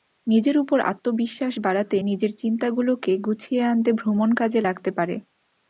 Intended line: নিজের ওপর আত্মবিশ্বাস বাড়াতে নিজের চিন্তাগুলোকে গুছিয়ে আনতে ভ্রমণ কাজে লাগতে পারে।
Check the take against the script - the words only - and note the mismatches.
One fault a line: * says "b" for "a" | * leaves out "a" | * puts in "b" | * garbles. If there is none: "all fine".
all fine